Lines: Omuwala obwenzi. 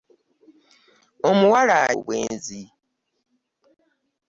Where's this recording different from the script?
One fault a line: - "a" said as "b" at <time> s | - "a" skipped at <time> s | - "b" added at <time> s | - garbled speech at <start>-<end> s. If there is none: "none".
none